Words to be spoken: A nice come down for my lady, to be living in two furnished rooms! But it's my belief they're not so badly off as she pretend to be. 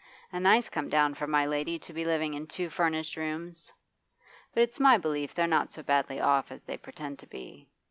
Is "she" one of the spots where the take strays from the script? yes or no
yes